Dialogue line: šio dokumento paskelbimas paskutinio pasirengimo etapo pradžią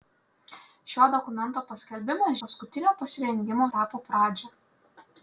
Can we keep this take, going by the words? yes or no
yes